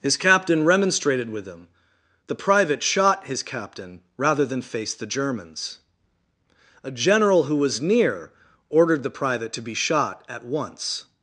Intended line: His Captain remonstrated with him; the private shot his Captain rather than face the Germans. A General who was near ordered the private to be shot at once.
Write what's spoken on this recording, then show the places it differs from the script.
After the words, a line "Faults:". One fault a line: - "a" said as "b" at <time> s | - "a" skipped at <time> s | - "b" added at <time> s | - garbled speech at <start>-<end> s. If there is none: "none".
His Captain remonstrated with him; the private shot his Captain rather than face the Germans. A General who was near ordered the private to be shot at once.
Faults:
none